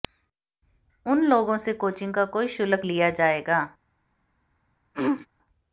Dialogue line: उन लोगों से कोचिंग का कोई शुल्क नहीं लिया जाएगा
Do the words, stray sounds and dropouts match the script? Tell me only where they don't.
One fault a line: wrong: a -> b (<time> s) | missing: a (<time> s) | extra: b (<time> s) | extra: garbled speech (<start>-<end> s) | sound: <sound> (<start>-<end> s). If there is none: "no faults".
missing: नहीं (2.9 s)
sound: throat clearing (4.9-5.3 s)